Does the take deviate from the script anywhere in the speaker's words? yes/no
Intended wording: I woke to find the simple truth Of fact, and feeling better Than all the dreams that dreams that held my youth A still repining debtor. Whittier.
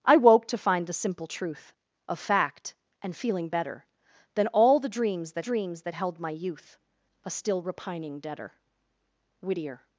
no